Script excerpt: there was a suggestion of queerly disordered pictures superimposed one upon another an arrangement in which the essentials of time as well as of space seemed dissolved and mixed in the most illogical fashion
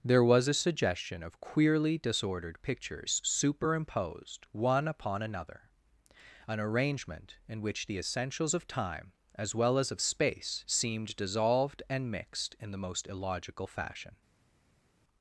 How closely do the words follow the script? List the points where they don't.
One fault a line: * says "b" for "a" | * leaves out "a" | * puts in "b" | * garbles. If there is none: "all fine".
all fine